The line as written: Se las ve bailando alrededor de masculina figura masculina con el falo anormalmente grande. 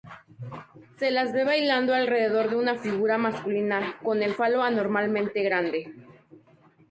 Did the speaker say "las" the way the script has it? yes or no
yes